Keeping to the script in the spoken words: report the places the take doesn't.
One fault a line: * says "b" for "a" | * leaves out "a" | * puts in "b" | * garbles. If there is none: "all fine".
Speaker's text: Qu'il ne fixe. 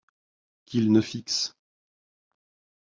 all fine